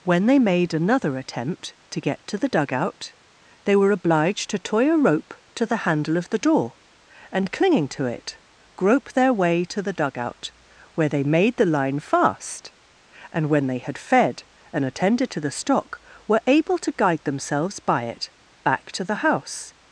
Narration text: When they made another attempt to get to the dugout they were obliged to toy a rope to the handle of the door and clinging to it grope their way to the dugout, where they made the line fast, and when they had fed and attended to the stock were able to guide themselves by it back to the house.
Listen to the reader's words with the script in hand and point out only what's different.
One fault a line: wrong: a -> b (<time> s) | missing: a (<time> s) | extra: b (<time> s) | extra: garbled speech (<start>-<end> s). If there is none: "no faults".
no faults